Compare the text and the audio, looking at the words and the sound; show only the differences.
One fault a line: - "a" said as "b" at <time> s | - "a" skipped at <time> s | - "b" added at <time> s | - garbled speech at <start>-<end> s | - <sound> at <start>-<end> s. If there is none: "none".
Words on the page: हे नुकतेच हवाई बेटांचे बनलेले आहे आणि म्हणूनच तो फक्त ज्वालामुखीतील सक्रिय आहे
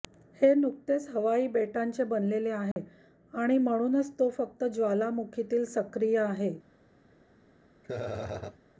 - dropout at 2.7-2.8 s
- laugh at 7.8-8.6 s